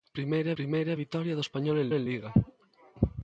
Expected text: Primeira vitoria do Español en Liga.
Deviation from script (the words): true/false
true